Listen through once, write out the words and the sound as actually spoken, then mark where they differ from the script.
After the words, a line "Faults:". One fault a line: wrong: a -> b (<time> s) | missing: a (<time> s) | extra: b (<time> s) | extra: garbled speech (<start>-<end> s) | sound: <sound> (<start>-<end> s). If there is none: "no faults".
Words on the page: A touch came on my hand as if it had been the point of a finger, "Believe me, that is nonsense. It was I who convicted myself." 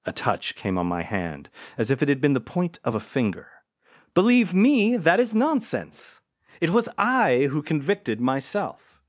A touch came on my hand as if it had been the point of a finger, "Believe me, that is nonsense. It was I who convicted myself."
Faults:
no faults